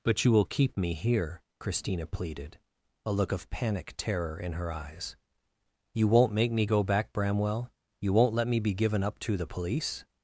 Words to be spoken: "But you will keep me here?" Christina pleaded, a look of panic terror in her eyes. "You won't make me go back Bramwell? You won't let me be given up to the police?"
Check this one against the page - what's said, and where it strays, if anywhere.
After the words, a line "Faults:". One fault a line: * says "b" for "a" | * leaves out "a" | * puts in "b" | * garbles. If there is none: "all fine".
"But you will keep me here?" Christina pleaded, a look of panic terror in her eyes. "You won't make me go back Bramwell? You won't let me be given up to the police?"
Faults:
all fine